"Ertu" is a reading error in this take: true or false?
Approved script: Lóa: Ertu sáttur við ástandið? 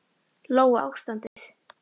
true